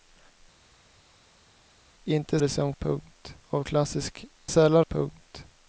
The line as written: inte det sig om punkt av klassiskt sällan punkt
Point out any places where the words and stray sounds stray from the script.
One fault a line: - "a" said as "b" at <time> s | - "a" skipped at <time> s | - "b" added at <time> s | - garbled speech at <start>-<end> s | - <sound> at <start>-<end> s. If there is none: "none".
none